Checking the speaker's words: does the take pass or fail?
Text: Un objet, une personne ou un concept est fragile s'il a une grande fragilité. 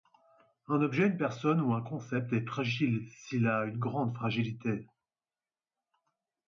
pass